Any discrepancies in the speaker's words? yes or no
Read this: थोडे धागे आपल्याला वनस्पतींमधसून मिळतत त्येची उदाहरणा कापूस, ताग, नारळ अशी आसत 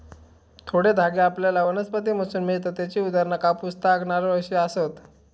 no